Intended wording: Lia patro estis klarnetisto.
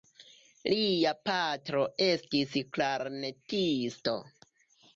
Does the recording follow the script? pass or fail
pass